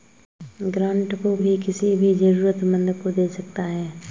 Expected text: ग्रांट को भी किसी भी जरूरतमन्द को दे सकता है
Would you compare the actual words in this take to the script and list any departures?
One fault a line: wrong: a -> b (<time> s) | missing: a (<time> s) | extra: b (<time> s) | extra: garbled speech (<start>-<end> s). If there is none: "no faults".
no faults